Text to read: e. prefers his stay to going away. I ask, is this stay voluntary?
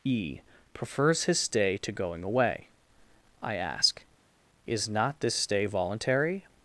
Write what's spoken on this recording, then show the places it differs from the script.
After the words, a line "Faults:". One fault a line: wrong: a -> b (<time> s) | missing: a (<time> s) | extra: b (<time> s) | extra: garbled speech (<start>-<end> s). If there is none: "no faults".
e. prefers his stay to going away. I ask, is not this stay voluntary?
Faults:
extra: not (4.9 s)